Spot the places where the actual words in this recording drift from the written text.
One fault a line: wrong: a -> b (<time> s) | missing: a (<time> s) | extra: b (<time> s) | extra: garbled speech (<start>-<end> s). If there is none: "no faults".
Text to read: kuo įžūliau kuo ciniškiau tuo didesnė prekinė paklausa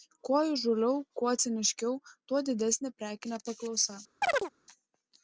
no faults